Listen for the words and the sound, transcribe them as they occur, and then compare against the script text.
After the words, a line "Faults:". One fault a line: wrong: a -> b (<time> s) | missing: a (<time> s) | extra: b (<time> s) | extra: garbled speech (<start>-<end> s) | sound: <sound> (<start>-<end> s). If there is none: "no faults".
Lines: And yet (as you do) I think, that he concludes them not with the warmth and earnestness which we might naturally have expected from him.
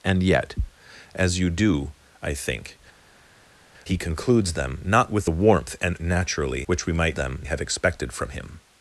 And yet (as you do) I think, he concludes them not with the warmth and naturally which we might them have expected from him.
Faults:
missing: that (2.8 s)
wrong: earnestness -> naturally (6.0 s)
wrong: naturally -> them (7.1 s)